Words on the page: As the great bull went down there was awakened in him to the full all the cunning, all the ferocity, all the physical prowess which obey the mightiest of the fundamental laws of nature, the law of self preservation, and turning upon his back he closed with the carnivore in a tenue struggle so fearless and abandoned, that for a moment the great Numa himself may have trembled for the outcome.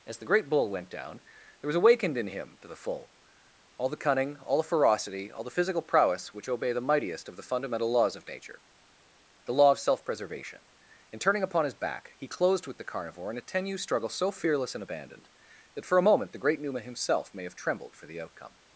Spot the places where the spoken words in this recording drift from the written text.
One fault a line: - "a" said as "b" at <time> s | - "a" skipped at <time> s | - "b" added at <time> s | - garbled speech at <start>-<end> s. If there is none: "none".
none